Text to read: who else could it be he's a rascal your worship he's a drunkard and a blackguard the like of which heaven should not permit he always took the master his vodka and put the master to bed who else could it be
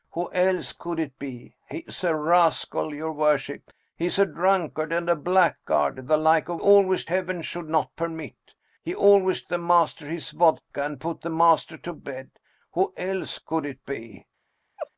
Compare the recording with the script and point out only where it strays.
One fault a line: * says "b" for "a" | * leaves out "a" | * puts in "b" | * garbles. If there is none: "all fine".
* says "always" for "which"
* leaves out "took"